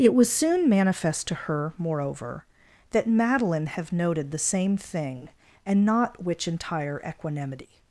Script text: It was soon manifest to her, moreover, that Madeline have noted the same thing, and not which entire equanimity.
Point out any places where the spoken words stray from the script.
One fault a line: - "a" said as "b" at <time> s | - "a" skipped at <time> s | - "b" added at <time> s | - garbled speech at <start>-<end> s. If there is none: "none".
none